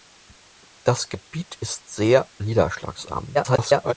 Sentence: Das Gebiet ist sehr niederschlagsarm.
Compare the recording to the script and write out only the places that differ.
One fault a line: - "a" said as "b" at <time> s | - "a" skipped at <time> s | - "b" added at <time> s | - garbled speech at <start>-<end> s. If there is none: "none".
- garbled speech at 3.3-3.9 s